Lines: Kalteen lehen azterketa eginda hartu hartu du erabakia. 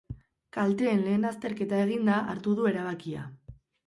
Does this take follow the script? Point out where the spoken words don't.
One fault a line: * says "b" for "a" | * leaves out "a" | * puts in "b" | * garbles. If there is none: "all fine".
* leaves out "hartu"